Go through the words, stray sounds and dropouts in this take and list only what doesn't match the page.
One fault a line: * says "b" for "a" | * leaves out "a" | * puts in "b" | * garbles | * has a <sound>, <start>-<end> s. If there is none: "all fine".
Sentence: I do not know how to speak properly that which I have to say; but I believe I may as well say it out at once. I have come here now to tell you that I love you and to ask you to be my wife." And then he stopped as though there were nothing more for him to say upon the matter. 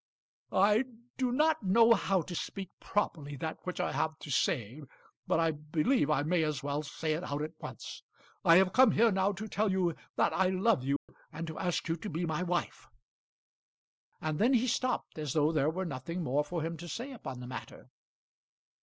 * has a dropout, 11.0-11.1 s